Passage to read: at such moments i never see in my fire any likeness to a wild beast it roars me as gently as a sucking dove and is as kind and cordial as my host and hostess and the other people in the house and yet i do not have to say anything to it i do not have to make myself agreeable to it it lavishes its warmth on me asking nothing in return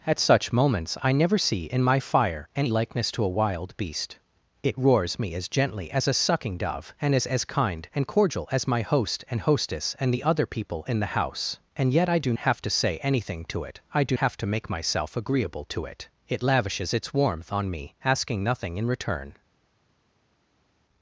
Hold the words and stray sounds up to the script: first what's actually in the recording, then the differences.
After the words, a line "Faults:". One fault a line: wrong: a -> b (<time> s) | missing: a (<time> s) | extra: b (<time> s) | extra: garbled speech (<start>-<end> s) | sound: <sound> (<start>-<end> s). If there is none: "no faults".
at such moments i never see in my fire any likeness to a wild beast it roars me as gently as a sucking dove and is as kind and cordial as my host and hostess and the other people in the house and yet i do have to say anything to it i do have to make myself agreeable to it it lavishes its warmth on me asking nothing in return
Faults:
missing: not (12.3 s)
missing: not (14.2 s)